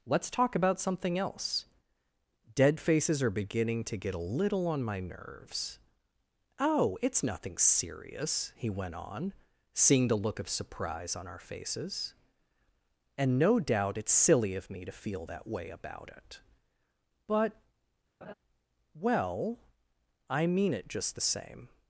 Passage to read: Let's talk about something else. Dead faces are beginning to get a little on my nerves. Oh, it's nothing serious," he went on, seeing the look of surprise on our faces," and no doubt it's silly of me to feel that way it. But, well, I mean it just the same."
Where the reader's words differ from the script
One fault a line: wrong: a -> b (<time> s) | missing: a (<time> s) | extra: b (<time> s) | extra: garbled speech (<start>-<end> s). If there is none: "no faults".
extra: about (15.7 s)